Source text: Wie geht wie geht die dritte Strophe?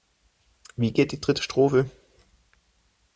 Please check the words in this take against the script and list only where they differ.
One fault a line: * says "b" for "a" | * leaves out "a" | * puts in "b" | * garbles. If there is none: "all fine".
* leaves out "wie geht"